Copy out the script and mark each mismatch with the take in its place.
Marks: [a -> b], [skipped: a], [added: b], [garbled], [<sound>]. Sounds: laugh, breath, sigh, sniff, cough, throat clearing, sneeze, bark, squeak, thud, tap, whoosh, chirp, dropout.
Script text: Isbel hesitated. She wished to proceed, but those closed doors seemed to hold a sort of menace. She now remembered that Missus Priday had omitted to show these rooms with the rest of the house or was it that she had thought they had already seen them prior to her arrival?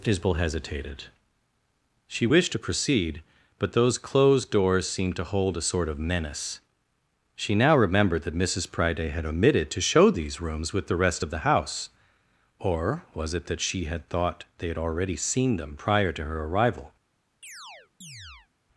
Isbel hesitated. She wished to proceed, but those closed doors seemed to hold a sort of menace. She now remembered that Missus Priday had omitted to show these rooms with the rest of the house or was it that she had thought they had already seen them prior to her arrival? [chirp]